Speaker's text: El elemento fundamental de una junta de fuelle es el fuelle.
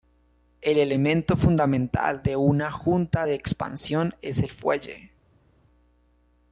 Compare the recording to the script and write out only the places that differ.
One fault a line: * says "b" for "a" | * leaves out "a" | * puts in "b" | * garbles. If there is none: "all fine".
* says "expansión" for "fuelle"